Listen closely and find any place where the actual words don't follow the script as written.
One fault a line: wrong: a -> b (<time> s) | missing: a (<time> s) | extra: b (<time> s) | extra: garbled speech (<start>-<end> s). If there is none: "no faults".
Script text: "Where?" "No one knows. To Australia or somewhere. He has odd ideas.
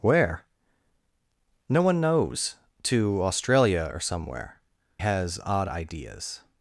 missing: He (4.6 s)